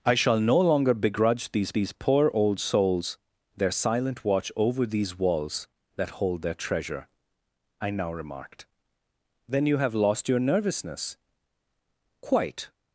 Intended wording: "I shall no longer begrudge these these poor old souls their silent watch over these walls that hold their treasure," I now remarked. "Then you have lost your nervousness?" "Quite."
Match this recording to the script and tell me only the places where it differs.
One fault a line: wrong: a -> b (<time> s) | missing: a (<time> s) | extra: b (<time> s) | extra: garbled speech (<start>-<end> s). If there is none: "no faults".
no faults